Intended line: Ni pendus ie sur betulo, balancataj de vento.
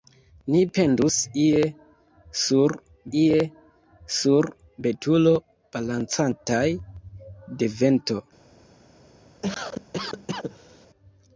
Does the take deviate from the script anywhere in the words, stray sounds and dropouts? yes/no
yes